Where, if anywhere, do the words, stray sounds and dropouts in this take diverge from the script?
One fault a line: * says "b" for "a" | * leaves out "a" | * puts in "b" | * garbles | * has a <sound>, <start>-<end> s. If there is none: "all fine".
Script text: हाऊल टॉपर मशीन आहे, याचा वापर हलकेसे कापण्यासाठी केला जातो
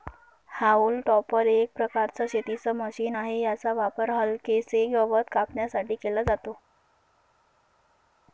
* puts in "एक प्रकारचं शेतीच"
* puts in "गवत"